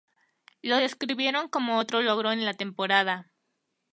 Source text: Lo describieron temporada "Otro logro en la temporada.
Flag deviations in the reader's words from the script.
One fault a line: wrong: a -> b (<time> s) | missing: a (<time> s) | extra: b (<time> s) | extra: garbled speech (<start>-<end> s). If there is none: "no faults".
wrong: temporada -> como (1.5 s)